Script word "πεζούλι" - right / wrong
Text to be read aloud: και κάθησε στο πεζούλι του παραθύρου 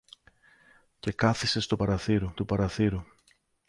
wrong